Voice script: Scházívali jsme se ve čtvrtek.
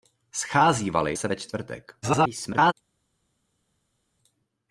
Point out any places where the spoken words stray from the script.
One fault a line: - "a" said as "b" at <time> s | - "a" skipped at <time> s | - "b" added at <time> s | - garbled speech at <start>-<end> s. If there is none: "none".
- "jsme" skipped at 1.1 s
- garbled speech at 2.0-2.7 s